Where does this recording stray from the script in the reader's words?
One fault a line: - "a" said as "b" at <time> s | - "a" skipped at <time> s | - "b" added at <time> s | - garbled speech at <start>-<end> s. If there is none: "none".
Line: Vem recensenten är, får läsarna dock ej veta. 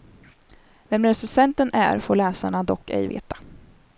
none